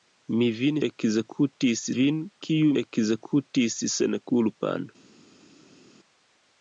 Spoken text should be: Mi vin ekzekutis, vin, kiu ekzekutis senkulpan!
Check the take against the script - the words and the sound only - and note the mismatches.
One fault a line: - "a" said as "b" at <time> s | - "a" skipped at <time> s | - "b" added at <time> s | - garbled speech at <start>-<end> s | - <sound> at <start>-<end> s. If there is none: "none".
none